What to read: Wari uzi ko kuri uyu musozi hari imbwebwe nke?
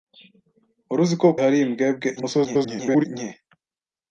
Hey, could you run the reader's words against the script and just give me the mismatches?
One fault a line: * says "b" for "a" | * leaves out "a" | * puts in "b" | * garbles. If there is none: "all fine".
* leaves out "kuri uyu musozi"
* garbles